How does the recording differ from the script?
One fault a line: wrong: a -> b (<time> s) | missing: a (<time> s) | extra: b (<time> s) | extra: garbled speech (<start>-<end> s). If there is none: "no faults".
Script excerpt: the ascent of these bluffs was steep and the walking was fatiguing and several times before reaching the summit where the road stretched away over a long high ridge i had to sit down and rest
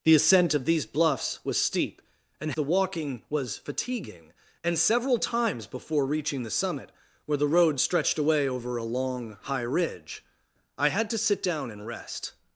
no faults